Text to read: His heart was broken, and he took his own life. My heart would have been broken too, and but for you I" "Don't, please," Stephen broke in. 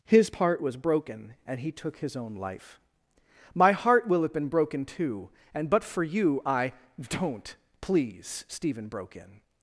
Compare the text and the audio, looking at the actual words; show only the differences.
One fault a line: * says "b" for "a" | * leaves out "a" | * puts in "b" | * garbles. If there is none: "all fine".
* says "part" for "heart"
* says "will" for "would"